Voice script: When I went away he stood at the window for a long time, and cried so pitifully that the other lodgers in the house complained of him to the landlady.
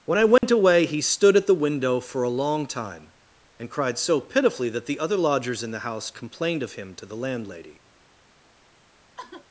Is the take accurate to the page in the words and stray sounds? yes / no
no